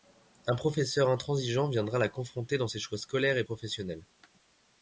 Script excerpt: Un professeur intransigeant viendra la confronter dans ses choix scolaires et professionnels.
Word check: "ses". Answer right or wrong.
right